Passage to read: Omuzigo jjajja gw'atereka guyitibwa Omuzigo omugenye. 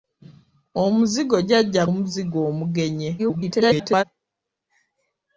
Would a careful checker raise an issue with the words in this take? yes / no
yes